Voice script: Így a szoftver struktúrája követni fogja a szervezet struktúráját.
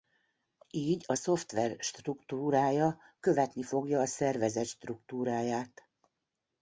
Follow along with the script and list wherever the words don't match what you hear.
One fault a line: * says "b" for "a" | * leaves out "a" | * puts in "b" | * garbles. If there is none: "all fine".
all fine